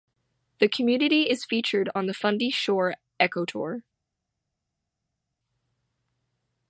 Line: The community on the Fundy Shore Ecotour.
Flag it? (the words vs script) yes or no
yes